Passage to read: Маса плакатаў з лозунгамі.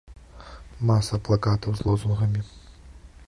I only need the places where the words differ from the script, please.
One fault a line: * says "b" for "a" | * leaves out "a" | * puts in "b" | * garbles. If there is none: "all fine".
all fine